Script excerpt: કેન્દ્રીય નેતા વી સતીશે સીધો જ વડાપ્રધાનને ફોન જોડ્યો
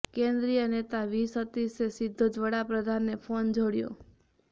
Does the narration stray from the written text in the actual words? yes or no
no